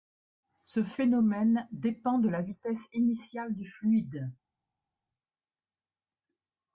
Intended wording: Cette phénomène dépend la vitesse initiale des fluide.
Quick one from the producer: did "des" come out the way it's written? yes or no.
no